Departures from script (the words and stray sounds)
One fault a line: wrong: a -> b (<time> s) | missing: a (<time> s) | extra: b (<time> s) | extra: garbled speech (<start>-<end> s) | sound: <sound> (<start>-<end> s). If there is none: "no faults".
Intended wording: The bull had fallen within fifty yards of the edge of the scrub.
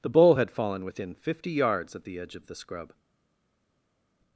wrong: of -> at (2.0 s)